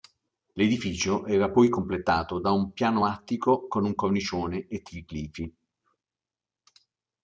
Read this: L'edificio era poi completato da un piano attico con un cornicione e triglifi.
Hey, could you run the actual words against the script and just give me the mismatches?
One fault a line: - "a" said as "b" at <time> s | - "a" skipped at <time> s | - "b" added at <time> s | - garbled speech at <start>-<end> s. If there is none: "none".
none